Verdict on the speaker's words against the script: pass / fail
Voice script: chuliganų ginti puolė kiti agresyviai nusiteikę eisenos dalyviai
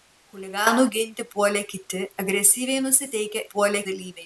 fail